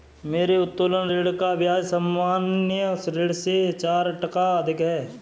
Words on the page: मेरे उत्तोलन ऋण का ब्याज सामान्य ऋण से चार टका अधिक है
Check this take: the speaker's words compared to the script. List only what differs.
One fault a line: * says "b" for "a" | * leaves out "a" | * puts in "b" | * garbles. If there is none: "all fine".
all fine